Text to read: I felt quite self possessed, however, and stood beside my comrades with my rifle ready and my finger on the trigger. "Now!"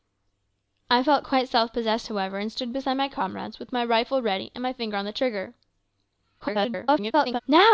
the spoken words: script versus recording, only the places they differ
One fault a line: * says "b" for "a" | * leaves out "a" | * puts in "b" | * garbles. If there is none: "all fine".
* garbles